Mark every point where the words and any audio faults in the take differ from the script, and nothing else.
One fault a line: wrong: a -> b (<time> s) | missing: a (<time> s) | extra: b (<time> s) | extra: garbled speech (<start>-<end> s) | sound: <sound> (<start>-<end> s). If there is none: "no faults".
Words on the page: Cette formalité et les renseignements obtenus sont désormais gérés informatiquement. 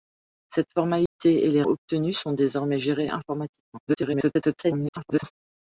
sound: dropout (1.1-1.2 s)
missing: renseignements (1.6 s)
extra: garbled speech (3.9-5.3 s)